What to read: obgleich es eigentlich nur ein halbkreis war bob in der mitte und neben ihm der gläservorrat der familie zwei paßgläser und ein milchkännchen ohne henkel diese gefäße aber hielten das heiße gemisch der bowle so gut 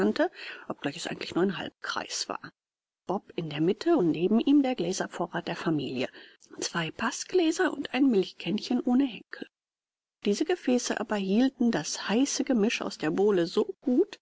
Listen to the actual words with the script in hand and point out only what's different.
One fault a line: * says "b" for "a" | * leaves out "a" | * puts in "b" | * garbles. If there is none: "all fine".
* puts in "aus"